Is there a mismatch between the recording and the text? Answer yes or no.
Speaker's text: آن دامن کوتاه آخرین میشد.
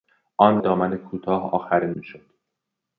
no